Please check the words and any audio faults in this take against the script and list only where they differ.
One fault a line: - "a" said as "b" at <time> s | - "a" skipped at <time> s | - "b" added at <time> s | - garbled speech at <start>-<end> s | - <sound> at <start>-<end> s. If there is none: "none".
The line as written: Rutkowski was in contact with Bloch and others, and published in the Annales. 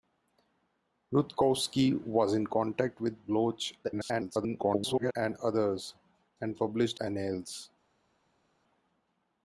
- garbled speech at 3.8-5.1 s
- "in the" skipped at 7.0 s